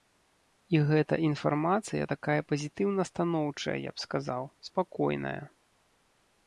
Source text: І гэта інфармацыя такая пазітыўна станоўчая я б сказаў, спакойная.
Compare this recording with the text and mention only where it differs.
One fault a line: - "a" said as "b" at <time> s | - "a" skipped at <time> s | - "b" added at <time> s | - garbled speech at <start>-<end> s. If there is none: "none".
none